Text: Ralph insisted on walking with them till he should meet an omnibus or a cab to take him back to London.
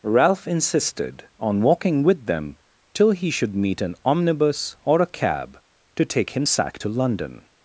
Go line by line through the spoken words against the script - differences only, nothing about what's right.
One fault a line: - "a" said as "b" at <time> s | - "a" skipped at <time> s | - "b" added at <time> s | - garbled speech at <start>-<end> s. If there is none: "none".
- "back" said as "sack" at 6.5 s